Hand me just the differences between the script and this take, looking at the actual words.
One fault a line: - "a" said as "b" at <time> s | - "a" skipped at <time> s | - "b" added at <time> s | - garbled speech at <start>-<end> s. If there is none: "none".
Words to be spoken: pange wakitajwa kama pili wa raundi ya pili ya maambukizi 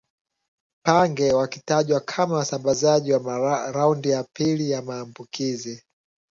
- "pili" said as "wasambazaji" at 2.4 s